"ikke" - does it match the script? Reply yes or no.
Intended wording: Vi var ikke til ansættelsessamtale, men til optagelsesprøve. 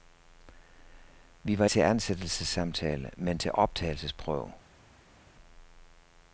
no